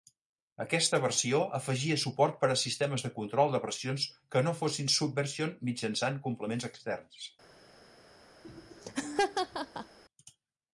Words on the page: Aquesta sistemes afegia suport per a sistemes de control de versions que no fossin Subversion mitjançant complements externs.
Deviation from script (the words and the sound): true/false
true